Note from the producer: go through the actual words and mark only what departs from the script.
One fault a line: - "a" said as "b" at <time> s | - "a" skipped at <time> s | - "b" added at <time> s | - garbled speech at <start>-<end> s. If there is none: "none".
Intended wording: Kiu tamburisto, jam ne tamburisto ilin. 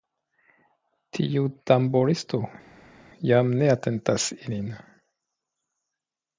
- "Kiu" said as "Tiu" at 1.2 s
- "tamburisto" said as "atentas" at 3.8 s